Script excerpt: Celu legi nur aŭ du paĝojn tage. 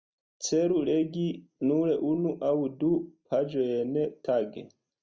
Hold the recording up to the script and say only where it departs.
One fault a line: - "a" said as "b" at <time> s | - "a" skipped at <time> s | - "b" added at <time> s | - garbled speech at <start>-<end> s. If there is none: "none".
- "unu" added at 2.1 s